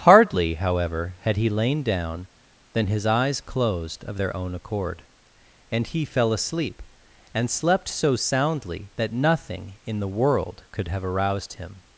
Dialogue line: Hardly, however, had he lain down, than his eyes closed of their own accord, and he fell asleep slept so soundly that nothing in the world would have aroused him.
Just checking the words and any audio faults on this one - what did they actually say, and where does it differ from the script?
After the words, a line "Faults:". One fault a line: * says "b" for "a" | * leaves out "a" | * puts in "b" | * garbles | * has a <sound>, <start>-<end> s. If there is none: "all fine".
Hardly, however, had he lain down, than his eyes closed of their own accord, and he fell asleep and slept so soundly that nothing in the world could have aroused him.
Faults:
* puts in "and"
* says "could" for "would"